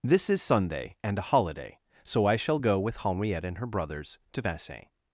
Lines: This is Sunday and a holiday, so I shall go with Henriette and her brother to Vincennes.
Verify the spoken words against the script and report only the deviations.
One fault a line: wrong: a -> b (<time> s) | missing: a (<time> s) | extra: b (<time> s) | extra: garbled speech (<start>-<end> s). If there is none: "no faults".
wrong: brother -> brothers (3.7 s)